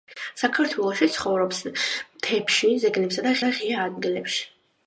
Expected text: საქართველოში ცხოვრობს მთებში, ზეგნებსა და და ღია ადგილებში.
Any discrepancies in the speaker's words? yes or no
no